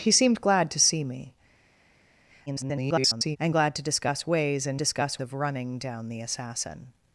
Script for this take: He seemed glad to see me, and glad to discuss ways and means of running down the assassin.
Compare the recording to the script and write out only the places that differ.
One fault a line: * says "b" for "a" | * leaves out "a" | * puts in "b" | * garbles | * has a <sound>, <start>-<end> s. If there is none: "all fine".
* garbles
* says "discuss" for "means"